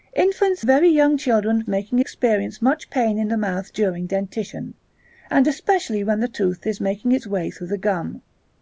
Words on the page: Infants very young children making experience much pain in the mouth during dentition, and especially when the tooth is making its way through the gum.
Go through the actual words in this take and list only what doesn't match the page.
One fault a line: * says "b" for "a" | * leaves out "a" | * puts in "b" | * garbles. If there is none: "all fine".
all fine